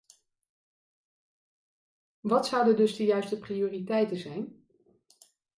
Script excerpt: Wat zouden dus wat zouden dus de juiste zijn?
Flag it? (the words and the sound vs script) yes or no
yes